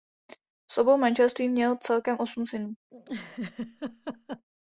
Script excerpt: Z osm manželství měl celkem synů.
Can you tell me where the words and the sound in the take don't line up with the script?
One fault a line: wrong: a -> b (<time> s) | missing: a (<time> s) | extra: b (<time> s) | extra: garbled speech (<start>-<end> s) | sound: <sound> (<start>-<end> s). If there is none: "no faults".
wrong: osm -> obou (0.8 s)
extra: osm (2.2 s)
sound: laugh (2.9-4.4 s)